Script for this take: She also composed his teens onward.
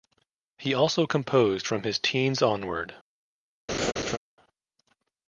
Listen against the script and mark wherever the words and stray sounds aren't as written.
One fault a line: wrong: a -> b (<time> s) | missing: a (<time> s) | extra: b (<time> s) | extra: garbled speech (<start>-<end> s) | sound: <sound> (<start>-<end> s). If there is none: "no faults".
wrong: She -> He (0.6 s)
extra: from (1.7 s)
sound: laugh (3.7-4.2 s)